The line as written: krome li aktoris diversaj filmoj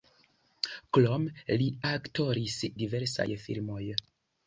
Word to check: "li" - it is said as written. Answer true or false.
true